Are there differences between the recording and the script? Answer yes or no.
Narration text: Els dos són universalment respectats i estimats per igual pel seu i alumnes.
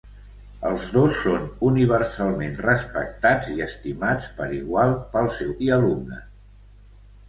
no